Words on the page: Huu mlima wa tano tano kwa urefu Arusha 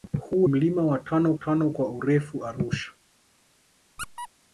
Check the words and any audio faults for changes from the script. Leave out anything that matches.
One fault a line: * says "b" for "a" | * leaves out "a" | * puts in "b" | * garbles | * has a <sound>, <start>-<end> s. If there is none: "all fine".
* has a squeak, 4.0-4.3 s